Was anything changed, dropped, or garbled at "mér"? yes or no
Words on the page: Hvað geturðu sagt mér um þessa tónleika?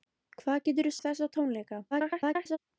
yes